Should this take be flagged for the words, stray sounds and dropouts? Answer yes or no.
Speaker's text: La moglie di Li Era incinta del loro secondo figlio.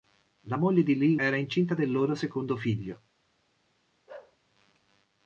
yes